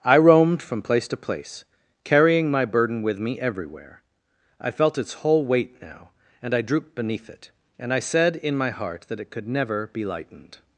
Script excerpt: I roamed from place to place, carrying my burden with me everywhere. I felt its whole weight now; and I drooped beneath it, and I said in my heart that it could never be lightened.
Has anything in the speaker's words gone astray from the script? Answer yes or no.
no